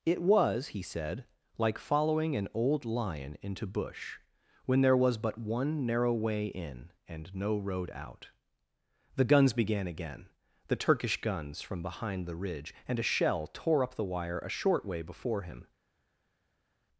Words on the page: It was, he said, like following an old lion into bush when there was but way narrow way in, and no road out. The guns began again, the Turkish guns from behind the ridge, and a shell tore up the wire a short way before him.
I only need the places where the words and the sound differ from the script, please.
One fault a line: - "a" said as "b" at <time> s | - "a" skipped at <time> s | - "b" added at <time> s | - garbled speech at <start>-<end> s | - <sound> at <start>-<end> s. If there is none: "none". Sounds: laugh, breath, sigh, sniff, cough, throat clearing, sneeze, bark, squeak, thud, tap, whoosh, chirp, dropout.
- "way" said as "one" at 5.4 s